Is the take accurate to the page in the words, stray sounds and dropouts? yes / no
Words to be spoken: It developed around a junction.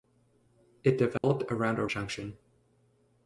no